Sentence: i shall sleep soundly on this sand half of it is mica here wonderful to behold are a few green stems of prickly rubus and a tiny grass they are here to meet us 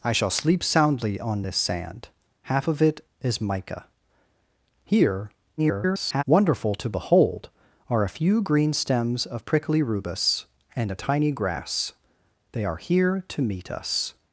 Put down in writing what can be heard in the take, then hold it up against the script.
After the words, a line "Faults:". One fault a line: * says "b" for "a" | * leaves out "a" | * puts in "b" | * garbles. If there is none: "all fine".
i shall sleep soundly on this sand half of it is mica here [garbled] wonderful to behold are a few green stems of prickly rubus and a tiny grass they are here to meet us
Faults:
* garbles